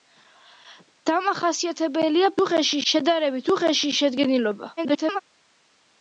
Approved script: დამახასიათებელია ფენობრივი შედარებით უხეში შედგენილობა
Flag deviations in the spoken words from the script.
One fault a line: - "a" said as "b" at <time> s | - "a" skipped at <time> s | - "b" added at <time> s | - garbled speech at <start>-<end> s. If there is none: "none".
- "ფენობრივი" said as "უხეში" at 2.4 s
- garbled speech at 4.8-5.2 s